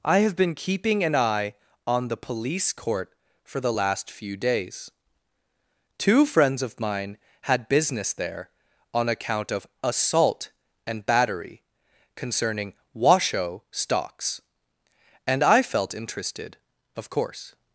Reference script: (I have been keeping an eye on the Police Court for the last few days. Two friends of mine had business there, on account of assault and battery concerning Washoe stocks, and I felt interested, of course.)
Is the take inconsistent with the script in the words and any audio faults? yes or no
no